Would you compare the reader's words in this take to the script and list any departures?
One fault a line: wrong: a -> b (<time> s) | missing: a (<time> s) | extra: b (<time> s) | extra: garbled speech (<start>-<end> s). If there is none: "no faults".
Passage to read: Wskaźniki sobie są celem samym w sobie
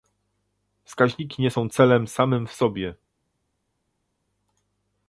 wrong: sobie -> nie (1.4 s)